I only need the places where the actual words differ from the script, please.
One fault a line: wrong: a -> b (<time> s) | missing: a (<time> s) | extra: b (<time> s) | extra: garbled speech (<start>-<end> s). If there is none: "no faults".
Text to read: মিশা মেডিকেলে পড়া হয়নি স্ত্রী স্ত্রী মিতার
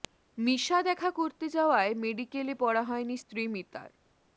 extra: দেখা করতে যাওয়ায় (0.8 s)
missing: স্ত্রী (3.4 s)